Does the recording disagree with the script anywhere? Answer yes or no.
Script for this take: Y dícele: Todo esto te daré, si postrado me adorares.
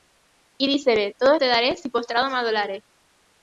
yes